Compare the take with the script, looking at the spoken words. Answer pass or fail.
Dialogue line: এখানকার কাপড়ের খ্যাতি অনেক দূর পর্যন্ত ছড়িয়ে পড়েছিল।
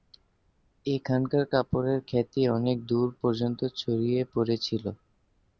pass